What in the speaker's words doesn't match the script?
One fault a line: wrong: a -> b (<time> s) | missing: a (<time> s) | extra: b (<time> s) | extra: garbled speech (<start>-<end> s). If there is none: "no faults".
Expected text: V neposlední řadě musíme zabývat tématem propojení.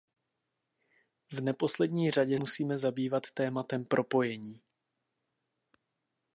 no faults